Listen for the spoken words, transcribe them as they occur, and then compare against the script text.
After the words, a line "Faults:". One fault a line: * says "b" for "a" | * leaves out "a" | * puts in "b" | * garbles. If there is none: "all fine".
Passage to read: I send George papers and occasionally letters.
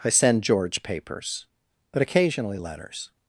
I send George papers but occasionally letters.
Faults:
* says "but" for "and"